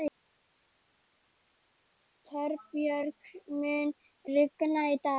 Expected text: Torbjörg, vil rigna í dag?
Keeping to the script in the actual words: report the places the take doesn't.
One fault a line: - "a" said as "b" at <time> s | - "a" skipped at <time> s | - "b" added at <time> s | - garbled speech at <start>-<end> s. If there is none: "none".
- "vil" said as "mun" at 3.6 s